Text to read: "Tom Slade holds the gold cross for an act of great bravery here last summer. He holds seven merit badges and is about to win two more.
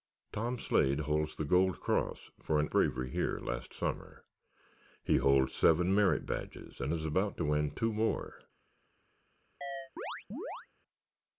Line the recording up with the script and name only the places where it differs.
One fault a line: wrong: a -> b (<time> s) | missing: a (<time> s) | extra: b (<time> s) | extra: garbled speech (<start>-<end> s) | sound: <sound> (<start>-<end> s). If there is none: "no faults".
missing: act of great (2.7 s)
sound: chirp (9.6-10.7 s)